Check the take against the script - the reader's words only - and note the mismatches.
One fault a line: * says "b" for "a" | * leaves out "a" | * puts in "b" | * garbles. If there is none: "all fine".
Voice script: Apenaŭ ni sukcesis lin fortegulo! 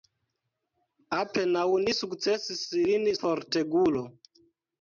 all fine